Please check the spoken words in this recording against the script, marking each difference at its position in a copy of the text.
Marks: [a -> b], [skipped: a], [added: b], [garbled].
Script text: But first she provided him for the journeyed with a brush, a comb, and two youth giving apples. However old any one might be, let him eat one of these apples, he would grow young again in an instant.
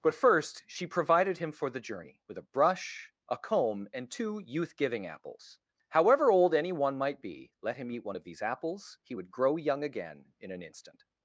But first she provided him for the [journeyed -> journey] with a brush, a comb, and two youth giving apples. However old any one might be, let him eat one of these apples, he would grow young again in an instant.